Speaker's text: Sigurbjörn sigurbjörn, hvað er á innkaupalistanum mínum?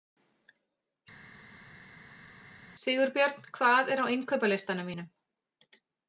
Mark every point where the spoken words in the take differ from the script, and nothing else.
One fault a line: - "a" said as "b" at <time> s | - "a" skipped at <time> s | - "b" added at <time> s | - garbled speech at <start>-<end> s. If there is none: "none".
- "sigurbjörn" skipped at 3.4 s